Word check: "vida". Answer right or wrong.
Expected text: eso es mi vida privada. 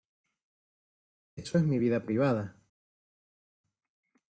right